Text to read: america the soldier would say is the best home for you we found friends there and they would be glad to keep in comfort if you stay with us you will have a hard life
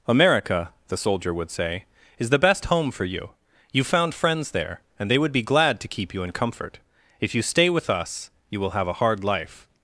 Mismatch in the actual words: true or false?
true